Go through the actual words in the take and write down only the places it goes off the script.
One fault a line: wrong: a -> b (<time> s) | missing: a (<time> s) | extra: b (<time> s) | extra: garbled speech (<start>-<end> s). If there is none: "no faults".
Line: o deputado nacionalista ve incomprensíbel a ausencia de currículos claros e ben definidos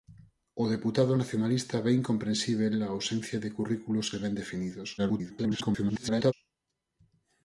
missing: claros (4.1 s)
extra: garbled speech (5.0-6.3 s)